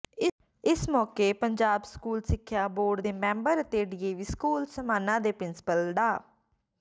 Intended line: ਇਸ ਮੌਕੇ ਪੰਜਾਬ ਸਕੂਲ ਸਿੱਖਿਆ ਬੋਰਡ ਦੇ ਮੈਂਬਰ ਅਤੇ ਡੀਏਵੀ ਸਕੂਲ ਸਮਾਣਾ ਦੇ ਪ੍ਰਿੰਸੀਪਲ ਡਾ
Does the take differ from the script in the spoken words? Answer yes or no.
no